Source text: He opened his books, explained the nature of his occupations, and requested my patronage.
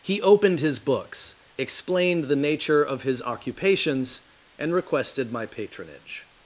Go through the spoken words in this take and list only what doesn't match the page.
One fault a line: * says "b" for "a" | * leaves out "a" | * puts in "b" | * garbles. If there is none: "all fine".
all fine